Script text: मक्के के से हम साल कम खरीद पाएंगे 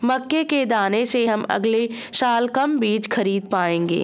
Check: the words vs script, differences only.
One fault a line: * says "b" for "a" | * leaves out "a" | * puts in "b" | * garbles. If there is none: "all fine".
* puts in "दाने"
* puts in "अगले"
* puts in "बीज"